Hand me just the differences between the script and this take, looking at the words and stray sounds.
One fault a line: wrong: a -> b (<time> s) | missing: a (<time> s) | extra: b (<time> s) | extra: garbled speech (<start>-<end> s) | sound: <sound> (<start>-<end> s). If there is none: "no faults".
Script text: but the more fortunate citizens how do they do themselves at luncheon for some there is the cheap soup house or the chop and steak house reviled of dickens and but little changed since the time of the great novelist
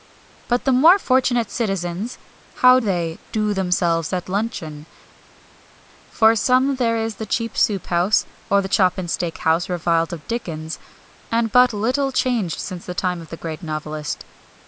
missing: do (2.8 s)